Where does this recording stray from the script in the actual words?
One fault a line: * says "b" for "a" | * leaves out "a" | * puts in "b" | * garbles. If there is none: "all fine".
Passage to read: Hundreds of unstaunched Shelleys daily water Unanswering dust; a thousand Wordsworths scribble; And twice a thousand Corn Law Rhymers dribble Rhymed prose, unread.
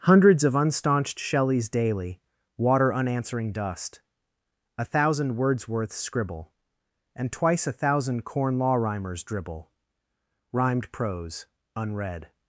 all fine